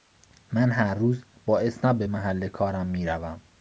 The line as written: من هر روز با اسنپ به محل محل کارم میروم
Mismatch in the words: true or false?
true